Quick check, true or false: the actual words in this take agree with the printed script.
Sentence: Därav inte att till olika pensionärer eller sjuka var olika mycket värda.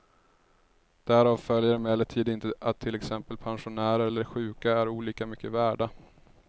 false